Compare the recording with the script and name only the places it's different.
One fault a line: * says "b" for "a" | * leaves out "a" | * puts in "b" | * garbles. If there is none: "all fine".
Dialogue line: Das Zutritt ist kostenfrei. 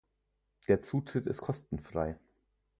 * says "Der" for "Das"